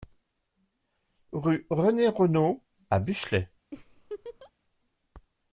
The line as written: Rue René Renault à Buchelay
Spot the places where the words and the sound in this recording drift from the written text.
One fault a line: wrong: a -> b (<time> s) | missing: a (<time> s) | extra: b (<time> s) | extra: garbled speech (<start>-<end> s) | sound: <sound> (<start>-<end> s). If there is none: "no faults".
sound: laugh (3.7-4.5 s)